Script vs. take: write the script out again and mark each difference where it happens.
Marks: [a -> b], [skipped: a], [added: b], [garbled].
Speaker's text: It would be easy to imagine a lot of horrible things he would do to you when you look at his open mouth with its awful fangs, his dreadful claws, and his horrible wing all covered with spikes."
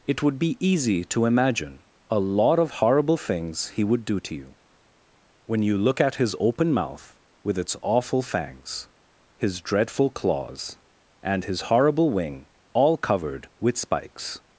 It would be easy to imagine a lot of horrible things he would do to you when you look at his open mouth with its awful fangs, his dreadful claws, and his horrible wing all covered with spikes."